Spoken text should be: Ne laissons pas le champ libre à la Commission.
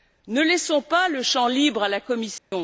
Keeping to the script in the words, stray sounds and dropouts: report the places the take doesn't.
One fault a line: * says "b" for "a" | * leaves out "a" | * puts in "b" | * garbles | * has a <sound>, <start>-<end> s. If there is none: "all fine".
* has a dropout, 2.4-2.5 s